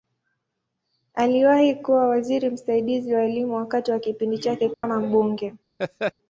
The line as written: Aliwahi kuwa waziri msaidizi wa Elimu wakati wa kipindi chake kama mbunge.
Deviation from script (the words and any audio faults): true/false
true